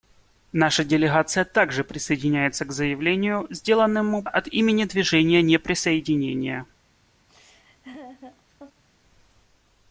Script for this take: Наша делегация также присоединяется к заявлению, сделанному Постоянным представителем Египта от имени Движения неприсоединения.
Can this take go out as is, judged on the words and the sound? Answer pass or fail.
fail